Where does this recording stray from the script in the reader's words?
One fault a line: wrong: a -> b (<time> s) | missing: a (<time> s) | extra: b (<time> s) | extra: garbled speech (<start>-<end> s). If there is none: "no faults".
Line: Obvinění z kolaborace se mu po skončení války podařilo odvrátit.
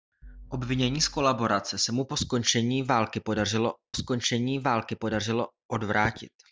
extra: skončení války podařilo (3.9 s)